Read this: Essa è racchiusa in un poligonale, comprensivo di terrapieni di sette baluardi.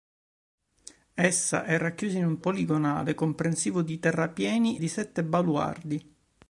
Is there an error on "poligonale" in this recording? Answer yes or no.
no